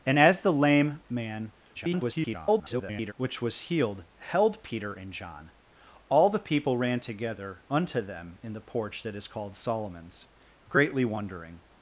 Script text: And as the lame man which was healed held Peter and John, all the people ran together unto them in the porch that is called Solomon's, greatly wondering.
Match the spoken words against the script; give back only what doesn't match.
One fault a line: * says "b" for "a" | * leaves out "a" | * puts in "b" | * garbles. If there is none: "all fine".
* garbles